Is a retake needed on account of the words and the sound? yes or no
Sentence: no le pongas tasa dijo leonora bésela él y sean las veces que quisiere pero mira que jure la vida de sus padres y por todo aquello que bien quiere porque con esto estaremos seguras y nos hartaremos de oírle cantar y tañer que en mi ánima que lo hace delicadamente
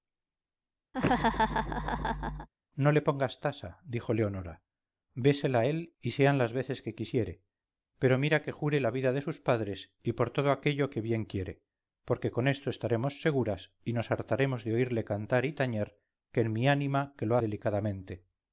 yes